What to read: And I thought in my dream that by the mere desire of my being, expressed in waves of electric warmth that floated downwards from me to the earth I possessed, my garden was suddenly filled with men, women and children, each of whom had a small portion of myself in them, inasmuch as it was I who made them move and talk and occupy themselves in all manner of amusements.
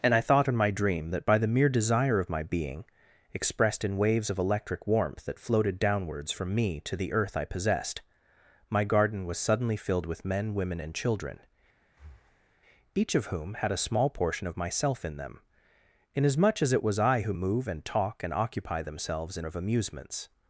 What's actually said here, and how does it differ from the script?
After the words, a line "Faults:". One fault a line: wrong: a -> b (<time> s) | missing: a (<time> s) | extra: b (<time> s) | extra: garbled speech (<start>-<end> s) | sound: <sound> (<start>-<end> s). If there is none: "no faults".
And I thought in my dream that by the mere desire of my being, expressed in waves of electric warmth that floated downwards from me to the earth I possessed, my garden was suddenly filled with men, women and children, each of whom had a small portion of myself in them, inasmuch as it was I who move and talk and occupy themselves in of amusements.
Faults:
sound: breath (11.9-12.6 s)
missing: made them (17.3 s)
missing: all manner (19.5 s)